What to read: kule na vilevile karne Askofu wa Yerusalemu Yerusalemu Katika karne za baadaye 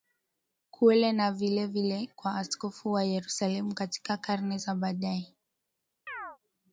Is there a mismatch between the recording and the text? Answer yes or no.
yes